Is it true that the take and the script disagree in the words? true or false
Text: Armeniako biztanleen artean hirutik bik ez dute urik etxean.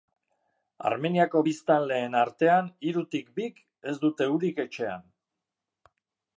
false